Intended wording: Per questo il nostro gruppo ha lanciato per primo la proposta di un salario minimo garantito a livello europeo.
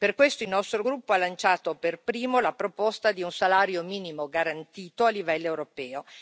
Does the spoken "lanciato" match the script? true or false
true